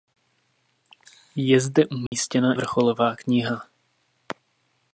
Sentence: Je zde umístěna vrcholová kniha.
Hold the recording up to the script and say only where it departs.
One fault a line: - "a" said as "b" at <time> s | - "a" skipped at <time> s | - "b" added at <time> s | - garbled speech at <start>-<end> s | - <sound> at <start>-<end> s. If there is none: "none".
- dropout at 2.1-2.1 s